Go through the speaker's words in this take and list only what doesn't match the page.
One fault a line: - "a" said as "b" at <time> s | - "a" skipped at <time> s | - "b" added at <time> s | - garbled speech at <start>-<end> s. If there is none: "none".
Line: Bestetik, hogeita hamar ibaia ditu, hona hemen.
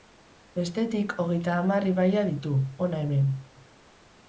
none